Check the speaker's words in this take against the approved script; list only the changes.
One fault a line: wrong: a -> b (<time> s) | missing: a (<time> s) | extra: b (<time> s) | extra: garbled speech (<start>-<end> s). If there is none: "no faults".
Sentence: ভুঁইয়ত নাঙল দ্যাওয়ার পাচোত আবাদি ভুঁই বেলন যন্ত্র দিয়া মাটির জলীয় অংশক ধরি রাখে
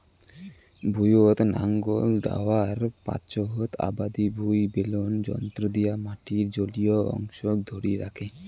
no faults